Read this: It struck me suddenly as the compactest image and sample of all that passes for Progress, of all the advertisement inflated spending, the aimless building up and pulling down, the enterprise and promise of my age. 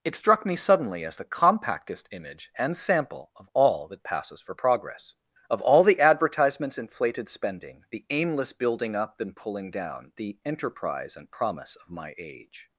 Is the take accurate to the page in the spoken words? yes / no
no